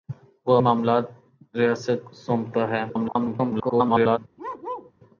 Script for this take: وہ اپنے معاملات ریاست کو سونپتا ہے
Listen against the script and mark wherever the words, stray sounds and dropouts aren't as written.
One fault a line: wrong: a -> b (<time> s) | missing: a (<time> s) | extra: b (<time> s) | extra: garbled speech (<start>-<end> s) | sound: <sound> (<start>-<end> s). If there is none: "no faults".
missing: اپنے (0.6 s)
missing: کو (2.1 s)
extra: garbled speech (2.9-4.2 s)
sound: bark (4.4-4.9 s)